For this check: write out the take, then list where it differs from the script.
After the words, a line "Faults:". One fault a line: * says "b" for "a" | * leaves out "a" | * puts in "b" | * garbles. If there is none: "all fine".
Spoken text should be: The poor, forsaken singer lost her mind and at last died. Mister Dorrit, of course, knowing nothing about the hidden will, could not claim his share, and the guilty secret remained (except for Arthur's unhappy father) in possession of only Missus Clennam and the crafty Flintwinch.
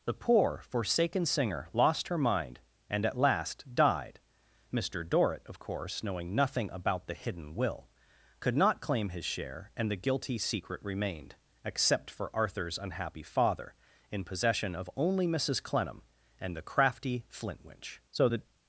The poor, forsaken singer lost her mind and at last died. Mister Dorrit, of course, knowing nothing about the hidden will, could not claim his share, and the guilty secret remained (except for Arthur's unhappy father) in possession of only Missus Clennam and the crafty Flintwinch. So the
Faults:
* puts in "So the"